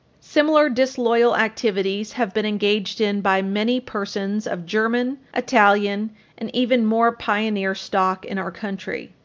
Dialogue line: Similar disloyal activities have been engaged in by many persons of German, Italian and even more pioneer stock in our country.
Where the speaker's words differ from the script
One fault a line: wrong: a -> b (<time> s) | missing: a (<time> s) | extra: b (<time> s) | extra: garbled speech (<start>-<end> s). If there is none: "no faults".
no faults